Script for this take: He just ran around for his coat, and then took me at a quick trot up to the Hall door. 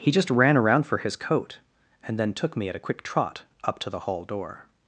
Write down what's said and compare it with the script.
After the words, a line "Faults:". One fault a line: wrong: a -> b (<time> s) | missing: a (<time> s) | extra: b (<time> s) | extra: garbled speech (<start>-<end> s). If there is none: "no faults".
He just ran around for his coat, and then took me at a quick trot up to the Hall door.
Faults:
no faults